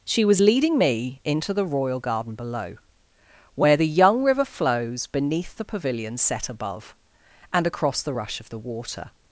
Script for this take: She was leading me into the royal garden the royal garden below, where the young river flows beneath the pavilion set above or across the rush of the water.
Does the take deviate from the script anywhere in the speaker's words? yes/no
yes